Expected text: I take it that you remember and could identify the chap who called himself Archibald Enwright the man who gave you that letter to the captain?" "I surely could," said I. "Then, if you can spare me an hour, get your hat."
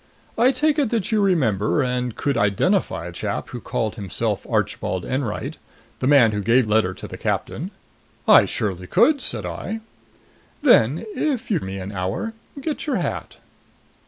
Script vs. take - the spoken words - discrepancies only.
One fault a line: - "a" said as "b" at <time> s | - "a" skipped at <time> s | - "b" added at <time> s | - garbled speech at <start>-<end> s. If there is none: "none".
- "the" skipped at 3.1 s
- "you that" skipped at 6.7 s
- "can spare" skipped at 11.6 s